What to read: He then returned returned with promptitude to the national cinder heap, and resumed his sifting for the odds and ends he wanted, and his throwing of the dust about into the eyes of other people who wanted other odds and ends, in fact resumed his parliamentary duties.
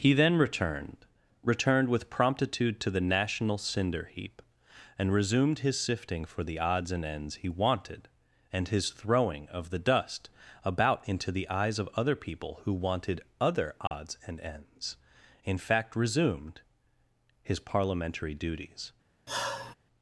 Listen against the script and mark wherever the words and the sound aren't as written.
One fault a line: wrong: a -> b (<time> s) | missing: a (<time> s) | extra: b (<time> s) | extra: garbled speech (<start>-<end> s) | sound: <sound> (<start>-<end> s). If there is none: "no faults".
sound: dropout (13.9-13.9 s)
sound: sigh (19.3-19.7 s)